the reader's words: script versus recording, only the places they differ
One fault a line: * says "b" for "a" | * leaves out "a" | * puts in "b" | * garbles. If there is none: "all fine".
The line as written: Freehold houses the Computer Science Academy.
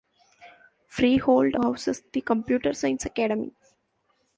all fine